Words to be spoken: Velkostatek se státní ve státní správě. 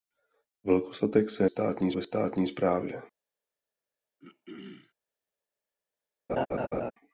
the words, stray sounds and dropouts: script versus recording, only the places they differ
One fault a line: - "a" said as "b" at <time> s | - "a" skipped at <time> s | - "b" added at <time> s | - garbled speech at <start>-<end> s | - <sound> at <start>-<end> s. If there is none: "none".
- throat clearing at 4.2-4.9 s
- laugh at 6.3-6.9 s